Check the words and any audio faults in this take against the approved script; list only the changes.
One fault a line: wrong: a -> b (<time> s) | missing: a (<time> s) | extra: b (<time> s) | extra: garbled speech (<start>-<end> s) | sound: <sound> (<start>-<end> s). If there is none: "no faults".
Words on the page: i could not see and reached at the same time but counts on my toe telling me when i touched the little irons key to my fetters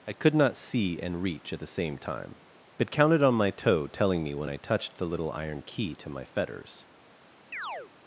wrong: reached -> reach (1.2 s)
wrong: counts -> counted (2.9 s)
wrong: irons -> iron (5.3 s)
sound: chirp (7.5-7.9 s)